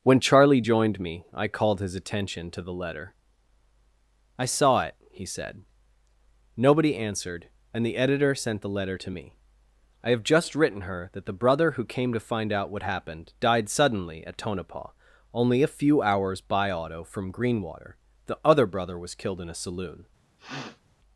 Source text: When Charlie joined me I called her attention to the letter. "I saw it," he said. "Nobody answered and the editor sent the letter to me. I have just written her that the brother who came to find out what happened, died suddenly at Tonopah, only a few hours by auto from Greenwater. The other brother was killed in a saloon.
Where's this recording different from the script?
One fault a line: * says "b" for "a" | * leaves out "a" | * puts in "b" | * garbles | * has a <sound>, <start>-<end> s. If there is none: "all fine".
* says "his" for "her"
* has a sniff, 20.4-20.8 s